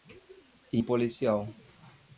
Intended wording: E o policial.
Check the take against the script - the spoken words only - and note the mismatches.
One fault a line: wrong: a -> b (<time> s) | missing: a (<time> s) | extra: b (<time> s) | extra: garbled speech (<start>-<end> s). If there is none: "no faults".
no faults